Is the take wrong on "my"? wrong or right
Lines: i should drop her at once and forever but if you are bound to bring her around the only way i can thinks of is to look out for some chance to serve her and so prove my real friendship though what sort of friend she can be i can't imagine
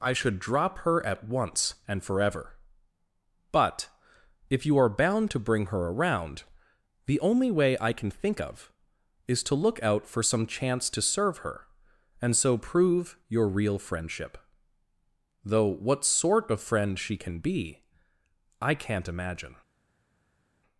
wrong